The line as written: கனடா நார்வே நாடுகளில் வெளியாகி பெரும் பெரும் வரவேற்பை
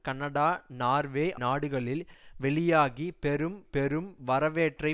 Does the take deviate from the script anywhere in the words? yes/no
no